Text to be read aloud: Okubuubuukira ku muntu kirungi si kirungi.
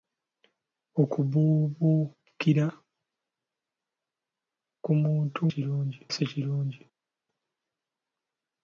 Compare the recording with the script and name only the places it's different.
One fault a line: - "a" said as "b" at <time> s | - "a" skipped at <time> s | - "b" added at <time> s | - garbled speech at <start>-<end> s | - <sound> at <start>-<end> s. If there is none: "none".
none